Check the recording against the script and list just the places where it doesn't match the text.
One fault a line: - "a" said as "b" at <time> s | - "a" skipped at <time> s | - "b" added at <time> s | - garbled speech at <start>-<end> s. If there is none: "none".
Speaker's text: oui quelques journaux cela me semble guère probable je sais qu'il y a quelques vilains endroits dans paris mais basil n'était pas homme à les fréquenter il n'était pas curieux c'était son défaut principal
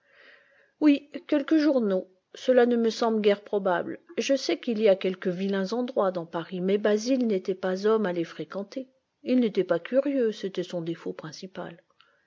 - "ne" added at 2.6 s